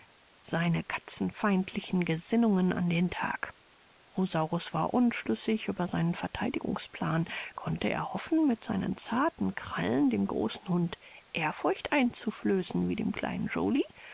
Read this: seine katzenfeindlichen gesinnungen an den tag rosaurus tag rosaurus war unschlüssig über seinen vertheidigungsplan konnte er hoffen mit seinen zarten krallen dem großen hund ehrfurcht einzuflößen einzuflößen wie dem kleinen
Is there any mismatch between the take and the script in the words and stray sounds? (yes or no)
yes